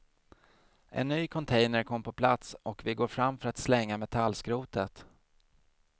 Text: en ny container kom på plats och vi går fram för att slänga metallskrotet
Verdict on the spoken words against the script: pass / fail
pass